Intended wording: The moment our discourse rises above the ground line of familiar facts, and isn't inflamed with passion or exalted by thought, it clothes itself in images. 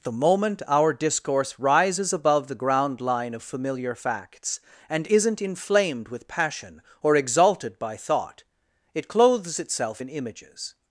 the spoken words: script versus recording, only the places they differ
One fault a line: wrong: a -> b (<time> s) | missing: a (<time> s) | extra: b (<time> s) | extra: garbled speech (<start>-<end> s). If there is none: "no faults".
no faults